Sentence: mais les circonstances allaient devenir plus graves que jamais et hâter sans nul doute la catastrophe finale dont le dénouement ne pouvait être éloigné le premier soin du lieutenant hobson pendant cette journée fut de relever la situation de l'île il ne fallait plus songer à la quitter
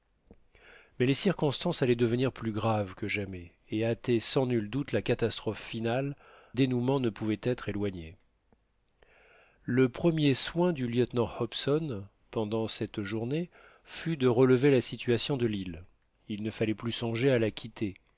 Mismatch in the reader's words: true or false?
true